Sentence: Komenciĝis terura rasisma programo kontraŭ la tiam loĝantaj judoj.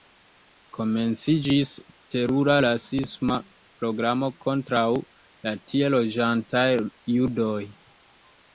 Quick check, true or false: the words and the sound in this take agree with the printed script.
false